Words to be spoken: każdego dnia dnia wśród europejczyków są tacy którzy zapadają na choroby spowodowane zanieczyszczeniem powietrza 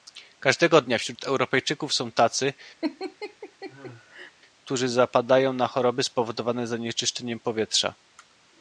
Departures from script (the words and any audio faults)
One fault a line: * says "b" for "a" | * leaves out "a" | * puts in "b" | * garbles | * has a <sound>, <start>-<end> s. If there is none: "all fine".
* leaves out "dnia"
* has a laugh, 2.8-4.3 s